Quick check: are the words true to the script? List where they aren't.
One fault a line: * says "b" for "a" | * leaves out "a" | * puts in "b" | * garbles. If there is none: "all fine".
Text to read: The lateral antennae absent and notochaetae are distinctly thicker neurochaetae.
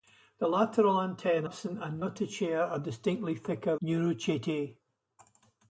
all fine